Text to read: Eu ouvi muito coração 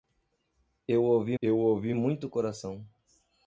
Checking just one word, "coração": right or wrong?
right